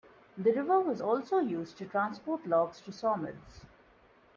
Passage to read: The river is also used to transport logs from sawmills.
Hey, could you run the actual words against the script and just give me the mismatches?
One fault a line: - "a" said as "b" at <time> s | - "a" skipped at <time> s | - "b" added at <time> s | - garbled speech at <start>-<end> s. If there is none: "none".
- "is" said as "was" at 0.8 s
- "from" said as "to" at 2.8 s